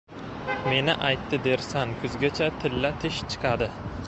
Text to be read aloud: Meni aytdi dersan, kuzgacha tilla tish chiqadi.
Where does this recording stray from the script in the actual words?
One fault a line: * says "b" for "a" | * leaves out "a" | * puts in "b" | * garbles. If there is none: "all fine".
all fine